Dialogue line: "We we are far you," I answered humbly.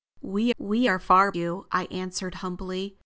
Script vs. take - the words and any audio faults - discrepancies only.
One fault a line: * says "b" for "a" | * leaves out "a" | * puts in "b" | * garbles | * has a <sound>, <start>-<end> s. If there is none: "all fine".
all fine